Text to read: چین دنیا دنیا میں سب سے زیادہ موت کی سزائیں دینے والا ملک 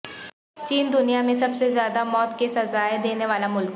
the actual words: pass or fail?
fail